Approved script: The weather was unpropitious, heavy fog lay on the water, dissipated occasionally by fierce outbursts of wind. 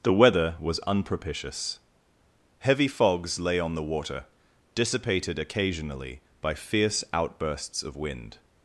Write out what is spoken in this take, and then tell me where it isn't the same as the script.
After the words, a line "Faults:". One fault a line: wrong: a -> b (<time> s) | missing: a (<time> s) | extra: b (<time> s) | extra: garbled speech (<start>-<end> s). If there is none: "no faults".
The weather was unpropitious, heavy fogs lay on the water, dissipated occasionally by fierce outbursts of wind.
Faults:
wrong: fog -> fogs (2.9 s)